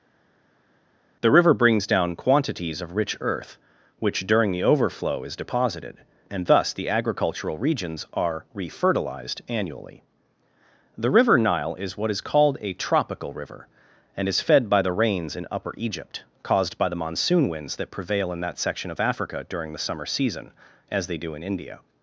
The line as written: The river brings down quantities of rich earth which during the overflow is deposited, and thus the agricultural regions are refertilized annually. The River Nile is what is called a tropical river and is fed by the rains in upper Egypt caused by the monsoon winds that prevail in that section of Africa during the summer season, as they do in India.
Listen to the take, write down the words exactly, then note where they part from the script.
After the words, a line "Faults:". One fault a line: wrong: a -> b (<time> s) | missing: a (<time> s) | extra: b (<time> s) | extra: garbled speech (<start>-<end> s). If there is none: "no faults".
The river brings down quantities of rich earth which during the overflow is deposited, and thus the agricultural regions are refertilized annually. The River Nile is what is called a tropical river and is fed by the rains in upper Egypt caused by the monsoon winds that prevail in that section of Africa during the summer season, as they do in India.
Faults:
no faults